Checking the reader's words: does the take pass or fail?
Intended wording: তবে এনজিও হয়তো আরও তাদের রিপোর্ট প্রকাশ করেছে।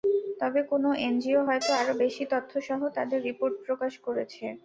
fail